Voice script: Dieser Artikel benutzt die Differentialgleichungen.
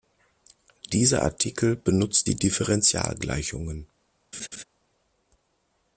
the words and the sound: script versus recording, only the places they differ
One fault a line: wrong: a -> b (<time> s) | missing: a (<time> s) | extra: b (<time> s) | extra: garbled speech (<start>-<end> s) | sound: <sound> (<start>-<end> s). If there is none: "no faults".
sound: laugh (4.3-4.6 s)